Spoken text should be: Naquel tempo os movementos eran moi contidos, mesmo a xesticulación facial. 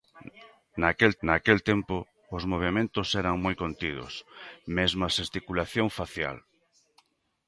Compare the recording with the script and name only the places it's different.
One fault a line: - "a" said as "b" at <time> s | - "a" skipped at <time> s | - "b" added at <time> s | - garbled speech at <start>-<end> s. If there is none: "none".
- "naquel" added at 1.3 s